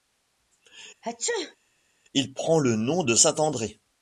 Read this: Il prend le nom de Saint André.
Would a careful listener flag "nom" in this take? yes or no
no